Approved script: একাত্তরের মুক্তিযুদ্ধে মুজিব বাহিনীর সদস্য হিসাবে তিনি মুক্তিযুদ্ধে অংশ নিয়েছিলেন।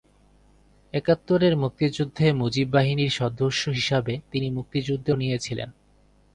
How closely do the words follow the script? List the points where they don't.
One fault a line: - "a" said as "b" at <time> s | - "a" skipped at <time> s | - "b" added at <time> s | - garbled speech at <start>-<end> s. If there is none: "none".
- "অংশ" skipped at 5.1 s